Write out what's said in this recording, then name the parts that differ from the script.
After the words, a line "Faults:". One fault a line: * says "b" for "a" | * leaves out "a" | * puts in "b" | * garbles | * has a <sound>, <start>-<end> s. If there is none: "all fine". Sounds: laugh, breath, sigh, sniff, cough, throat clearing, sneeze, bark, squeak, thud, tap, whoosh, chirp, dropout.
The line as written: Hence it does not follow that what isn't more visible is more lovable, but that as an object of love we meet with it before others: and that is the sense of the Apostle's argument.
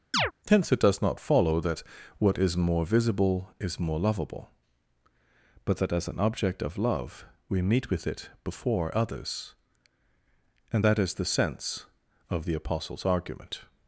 Hence it does not follow that what is more visible is more lovable, but that as an object of love we meet with it before others: and that is the sense of the Apostle's argument.
Faults:
* has a chirp, 0.1-0.3 s
* says "is" for "isn't"